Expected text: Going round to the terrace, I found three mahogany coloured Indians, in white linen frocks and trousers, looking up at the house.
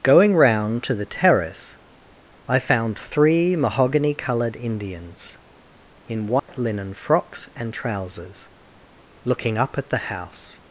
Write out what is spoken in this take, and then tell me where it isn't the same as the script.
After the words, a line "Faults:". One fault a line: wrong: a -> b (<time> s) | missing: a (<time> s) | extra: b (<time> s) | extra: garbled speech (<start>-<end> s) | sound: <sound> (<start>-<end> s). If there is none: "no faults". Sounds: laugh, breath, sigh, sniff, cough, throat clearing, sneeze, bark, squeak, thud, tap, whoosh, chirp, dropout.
Going round to the terrace, I found three mahogany coloured Indians, in white linen frocks and trousers, looking up at the house.
Faults:
sound: dropout (6.4-6.5 s)